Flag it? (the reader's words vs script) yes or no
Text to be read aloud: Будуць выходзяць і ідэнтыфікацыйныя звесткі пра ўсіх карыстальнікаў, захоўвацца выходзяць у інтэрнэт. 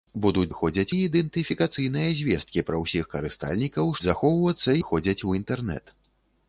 no